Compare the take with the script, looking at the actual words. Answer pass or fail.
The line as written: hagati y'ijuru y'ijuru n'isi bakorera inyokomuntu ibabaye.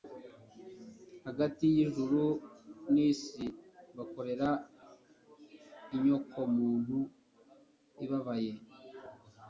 fail